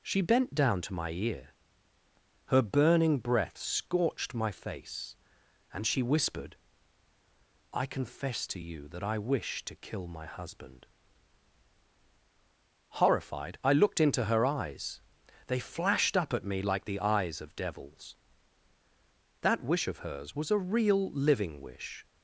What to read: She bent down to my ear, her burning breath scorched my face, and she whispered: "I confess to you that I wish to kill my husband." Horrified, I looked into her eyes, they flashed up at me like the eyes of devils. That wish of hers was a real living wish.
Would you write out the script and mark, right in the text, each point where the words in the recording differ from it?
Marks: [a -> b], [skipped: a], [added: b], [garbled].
She bent down to my ear, her burning breath scorched my face, and she whispered: "I confess to you that I wish to kill my husband." Horrified, I looked into her eyes, they flashed up at me like the eyes of devils. That wish of hers was a real living wish.